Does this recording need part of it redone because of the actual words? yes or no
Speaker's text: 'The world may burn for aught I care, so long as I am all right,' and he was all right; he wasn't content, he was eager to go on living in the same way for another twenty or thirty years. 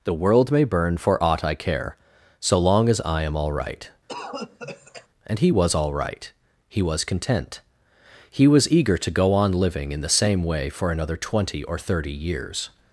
yes